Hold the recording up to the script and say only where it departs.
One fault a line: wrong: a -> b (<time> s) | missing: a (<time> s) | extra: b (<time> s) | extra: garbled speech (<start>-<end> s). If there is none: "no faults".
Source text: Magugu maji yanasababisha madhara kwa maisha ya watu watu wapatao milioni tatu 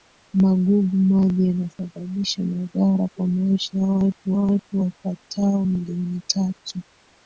no faults